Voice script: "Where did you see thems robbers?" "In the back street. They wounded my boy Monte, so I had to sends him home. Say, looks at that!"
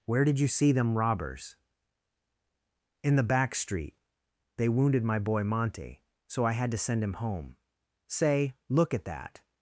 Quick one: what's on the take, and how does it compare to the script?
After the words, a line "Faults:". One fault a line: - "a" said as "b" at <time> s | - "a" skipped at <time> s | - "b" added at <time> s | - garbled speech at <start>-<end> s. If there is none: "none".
"Where did you see them robbers?" "In the back street. They wounded my boy Monte, so I had to send him home. Say, look at that!"
Faults:
- "thems" said as "them" at 0.7 s
- "sends" said as "send" at 6.8 s
- "looks" said as "look" at 8.7 s